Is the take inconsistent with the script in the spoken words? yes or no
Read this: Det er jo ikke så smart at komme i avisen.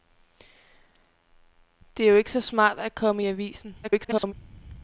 yes